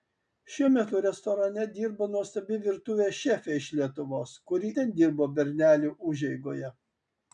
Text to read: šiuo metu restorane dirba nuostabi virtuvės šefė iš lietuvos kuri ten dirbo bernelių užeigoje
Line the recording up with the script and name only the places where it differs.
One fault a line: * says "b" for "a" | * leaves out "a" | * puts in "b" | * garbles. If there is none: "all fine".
all fine